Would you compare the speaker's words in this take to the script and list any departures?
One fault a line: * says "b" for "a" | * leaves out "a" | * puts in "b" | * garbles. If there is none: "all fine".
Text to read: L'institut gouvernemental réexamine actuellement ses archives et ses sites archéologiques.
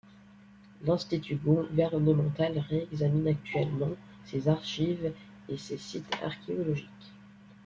all fine